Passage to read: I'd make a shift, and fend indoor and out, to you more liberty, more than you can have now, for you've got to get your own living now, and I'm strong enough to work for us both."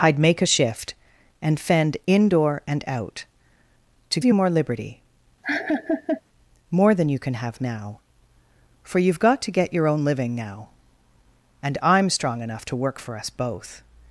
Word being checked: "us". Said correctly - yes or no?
yes